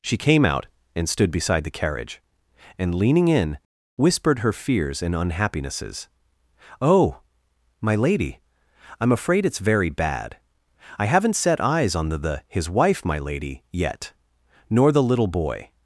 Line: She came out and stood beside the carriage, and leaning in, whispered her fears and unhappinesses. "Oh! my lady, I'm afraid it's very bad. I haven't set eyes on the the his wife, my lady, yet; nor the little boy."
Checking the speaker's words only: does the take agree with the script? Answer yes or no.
yes